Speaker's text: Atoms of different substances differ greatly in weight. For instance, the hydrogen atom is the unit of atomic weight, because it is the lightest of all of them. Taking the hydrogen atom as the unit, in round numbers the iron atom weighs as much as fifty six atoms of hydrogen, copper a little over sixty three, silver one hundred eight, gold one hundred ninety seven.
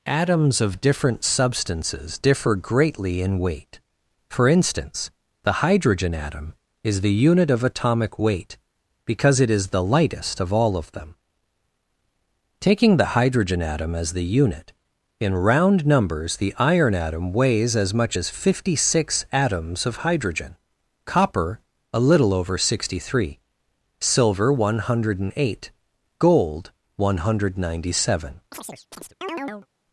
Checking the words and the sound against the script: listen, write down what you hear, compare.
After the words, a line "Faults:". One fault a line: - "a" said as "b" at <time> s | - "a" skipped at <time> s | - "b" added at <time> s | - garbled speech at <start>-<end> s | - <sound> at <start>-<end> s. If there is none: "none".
Atoms of different substances differ greatly in weight. For instance, the hydrogen atom is the unit of atomic weight, because it is the lightest of all of them. Taking the hydrogen atom as the unit, in round numbers the iron atom weighs as much as fifty six atoms of hydrogen, copper a little over sixty three, silver one hundred eight, gold one hundred ninety seven.
Faults:
- chirp at 28.5-29.7 s